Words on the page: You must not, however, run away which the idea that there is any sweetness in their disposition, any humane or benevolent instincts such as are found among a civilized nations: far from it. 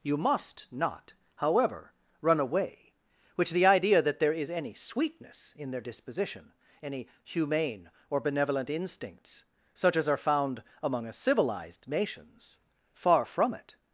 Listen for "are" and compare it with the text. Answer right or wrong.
right